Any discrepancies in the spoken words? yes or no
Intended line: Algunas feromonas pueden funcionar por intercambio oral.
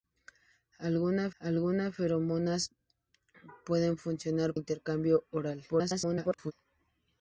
yes